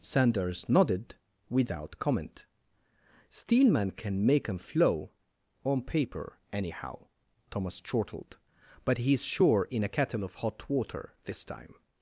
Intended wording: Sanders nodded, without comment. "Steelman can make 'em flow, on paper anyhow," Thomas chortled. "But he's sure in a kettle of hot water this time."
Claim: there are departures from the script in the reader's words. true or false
false